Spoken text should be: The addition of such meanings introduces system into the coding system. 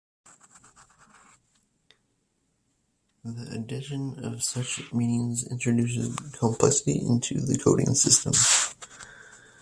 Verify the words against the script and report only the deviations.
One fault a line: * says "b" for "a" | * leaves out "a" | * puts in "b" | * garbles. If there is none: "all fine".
* says "complexity" for "system"